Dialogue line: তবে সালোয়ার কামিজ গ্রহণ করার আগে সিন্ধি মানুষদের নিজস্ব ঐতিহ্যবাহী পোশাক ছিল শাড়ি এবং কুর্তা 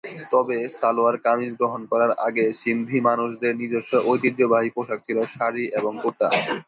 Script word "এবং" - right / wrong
right